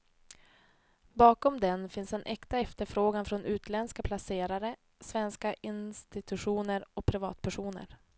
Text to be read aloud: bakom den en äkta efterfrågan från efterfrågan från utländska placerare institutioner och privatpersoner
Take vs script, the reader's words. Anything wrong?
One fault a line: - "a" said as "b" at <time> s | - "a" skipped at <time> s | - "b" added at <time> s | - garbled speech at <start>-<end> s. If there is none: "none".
- "finns" added at 1.9 s
- "efterfrågan från" skipped at 3.4 s
- "svenska" added at 5.0 s